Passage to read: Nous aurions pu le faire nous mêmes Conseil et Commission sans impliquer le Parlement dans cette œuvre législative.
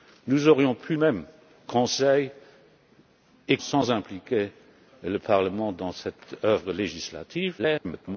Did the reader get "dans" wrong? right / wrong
right